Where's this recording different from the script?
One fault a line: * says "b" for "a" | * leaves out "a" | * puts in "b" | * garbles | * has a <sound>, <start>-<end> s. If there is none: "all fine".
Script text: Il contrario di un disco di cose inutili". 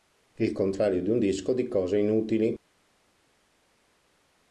all fine